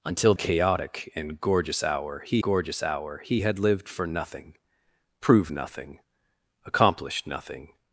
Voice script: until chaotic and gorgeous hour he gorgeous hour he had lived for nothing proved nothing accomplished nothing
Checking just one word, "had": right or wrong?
right